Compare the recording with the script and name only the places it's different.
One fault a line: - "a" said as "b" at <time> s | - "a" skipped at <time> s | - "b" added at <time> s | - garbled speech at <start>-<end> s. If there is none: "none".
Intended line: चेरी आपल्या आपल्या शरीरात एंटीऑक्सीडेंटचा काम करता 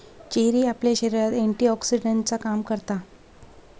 - "आपल्या" skipped at 0.9 s